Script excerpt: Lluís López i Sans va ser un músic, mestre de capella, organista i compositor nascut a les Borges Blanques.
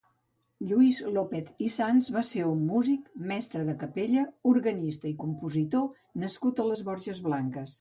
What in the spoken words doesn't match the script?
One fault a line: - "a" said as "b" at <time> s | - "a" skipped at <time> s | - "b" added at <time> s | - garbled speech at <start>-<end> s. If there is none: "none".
none